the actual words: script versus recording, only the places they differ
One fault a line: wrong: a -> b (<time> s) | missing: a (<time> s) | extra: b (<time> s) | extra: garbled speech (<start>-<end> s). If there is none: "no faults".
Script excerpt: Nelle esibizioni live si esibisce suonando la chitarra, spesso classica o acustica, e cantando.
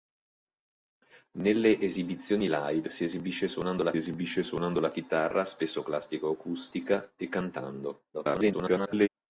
extra: esibisce suonando la (4.0 s)
extra: garbled speech (8.1-9.1 s)